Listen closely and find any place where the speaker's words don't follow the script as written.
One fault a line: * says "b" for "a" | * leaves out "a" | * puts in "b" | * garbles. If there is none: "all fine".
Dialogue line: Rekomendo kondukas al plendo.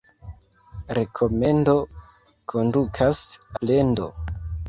* leaves out "al"